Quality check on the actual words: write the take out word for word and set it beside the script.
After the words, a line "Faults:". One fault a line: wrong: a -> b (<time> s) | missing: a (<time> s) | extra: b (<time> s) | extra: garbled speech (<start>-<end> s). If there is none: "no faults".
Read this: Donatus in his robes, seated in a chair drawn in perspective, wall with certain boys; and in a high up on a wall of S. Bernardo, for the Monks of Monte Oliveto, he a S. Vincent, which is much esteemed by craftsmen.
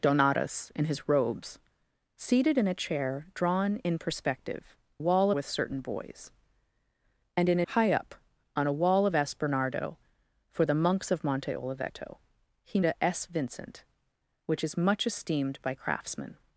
Donatus in his robes, seated in a chair drawn in perspective, wall with certain boys; and in a high up on a wall of S. Bernardo, for the Monks of Monte Oliveto, he a S. Vincent, which is much esteemed by craftsmen.
Faults:
no faults